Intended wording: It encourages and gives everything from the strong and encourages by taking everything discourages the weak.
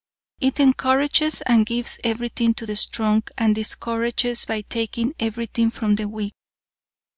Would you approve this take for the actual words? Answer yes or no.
no